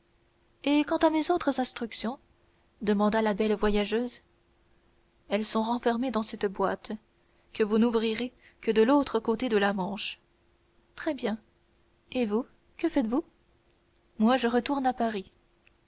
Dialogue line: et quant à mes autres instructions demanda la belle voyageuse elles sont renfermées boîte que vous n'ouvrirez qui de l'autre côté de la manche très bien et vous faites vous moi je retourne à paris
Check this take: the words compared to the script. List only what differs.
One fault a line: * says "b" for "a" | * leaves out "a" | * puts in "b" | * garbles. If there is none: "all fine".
* puts in "dans cette"
* says "que" for "qui"
* puts in "que"